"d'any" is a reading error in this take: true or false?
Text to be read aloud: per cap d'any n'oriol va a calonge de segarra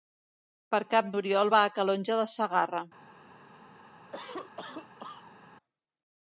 true